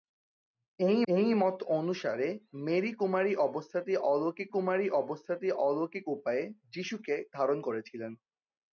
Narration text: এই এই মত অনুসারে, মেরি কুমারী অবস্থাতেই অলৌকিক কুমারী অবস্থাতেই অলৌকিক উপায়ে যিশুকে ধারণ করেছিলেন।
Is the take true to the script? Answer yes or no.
yes